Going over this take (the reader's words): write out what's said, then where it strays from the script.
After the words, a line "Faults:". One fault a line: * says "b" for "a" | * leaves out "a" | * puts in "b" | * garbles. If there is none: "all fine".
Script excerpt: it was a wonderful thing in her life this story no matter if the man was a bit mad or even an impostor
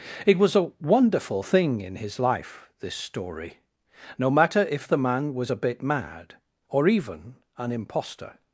it was a wonderful thing in his life this story no matter if the man was a bit mad or even an impostor
Faults:
* says "his" for "her"